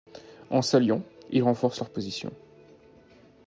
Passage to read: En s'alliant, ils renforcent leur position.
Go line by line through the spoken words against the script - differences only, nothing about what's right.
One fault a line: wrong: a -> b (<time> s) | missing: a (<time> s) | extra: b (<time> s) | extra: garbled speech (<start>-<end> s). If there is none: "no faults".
no faults